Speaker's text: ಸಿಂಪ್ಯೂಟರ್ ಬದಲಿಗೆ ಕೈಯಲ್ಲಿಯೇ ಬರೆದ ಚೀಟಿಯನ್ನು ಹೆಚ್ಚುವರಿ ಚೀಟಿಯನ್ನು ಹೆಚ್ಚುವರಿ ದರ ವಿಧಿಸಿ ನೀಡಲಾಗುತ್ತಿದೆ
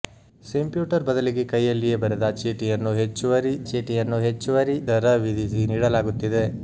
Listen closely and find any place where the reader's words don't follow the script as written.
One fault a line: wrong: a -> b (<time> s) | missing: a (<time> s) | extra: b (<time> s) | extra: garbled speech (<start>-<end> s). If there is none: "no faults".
no faults